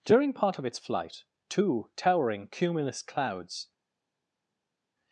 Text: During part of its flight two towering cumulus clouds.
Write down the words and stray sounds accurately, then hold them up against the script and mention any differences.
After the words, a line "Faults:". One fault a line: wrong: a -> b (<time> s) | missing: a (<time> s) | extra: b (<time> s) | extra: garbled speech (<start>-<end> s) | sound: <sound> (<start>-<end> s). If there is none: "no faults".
During part of its flight two towering cumulus clouds.
Faults:
no faults